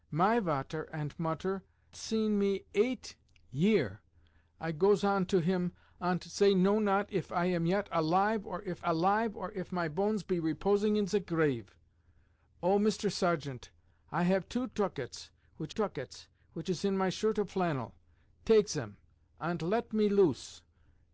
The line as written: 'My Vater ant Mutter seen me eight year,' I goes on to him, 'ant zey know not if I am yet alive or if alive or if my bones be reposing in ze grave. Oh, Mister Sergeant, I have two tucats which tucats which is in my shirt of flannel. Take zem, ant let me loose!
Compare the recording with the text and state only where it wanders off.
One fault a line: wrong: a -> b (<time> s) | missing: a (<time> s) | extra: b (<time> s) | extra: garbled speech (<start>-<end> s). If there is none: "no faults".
no faults